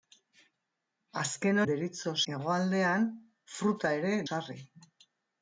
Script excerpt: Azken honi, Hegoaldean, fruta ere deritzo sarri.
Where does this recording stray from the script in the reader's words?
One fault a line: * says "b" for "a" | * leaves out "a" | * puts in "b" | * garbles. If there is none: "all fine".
* says "deritzo" for "honi"
* leaves out "deritzo"